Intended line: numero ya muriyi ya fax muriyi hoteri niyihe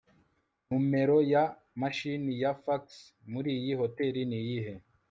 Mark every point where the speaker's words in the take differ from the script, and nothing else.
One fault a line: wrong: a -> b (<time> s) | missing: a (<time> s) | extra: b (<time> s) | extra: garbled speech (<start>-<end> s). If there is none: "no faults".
wrong: muriyi -> mashini (1.8 s)